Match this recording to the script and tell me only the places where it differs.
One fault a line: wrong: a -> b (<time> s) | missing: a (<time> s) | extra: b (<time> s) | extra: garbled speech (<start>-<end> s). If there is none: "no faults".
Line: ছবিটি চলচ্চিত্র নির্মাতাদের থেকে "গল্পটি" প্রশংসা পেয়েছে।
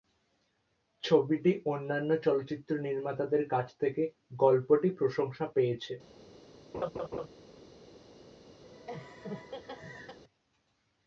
extra: অন্যান্য (1.7 s)
extra: কাছ (3.5 s)